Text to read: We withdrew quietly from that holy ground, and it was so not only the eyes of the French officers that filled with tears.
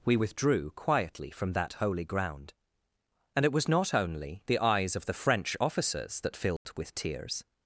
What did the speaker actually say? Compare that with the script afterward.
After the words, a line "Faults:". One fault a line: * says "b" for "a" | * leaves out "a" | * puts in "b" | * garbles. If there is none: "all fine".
We withdrew quietly from that holy ground, and it was not only the eyes of the French officers that filled with tears.
Faults:
* leaves out "so"